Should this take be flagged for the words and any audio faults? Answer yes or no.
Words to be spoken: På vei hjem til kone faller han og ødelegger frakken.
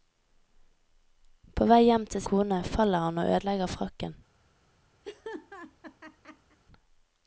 yes